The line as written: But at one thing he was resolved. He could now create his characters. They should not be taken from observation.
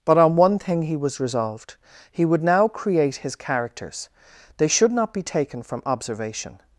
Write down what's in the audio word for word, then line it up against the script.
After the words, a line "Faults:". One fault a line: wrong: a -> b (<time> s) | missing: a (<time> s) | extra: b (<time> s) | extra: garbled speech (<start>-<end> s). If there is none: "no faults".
But on one thing he was resolved. He would now create his characters. They should not be taken from observation.
Faults:
wrong: at -> on (0.2 s)
wrong: could -> would (2.2 s)